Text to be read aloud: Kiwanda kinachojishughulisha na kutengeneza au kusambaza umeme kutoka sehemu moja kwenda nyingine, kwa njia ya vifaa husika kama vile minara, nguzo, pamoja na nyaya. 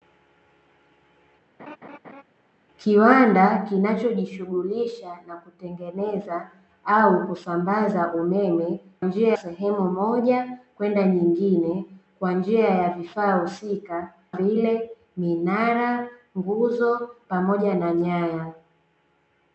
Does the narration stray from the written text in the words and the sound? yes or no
yes